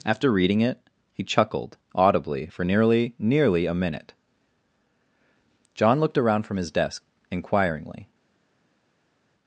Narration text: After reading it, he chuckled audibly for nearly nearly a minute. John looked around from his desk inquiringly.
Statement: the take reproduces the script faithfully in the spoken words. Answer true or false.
true